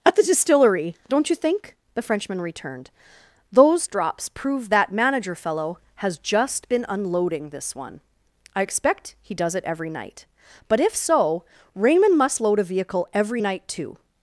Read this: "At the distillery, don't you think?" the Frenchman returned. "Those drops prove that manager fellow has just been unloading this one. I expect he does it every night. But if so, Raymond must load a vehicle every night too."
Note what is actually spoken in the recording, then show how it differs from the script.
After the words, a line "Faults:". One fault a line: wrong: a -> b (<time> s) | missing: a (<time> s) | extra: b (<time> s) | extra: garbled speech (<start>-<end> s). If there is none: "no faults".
"At the distillery, don't you think?" the Frenchman returned. "Those drops prove that manager fellow has just been unloading this one. I expect he does it every night. But if so, Raymond must load a vehicle every night too."
Faults:
no faults